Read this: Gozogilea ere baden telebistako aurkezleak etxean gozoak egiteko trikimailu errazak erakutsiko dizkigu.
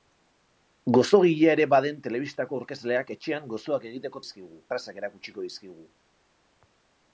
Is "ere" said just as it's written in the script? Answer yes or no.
yes